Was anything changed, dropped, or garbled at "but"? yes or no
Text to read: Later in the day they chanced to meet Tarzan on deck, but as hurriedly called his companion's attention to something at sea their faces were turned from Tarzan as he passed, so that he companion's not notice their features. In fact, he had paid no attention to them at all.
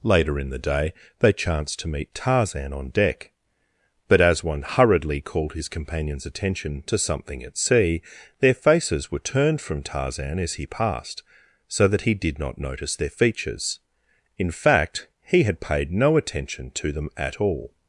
no